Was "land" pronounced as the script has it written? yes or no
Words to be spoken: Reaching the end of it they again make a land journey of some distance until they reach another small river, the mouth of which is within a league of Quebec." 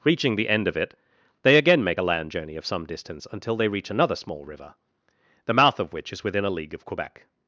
yes